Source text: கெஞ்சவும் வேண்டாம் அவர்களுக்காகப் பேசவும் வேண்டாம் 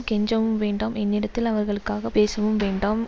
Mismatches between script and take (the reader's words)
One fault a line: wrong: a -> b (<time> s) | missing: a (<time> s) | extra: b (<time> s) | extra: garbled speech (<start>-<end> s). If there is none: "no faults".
extra: என்னிடத்தில் (1.0 s)